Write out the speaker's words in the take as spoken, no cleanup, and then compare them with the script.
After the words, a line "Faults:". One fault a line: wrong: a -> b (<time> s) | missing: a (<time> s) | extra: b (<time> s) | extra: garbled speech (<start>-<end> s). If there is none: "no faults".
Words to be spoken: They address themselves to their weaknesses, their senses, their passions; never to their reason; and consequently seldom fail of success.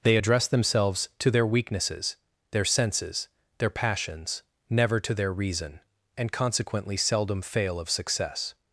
They address themselves to their weaknesses, their senses, their passions; never to their reason; and consequently seldom fail of success.
Faults:
no faults